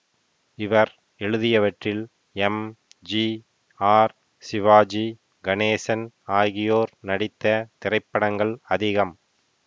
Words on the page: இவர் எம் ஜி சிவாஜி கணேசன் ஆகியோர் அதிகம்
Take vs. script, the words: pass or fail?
fail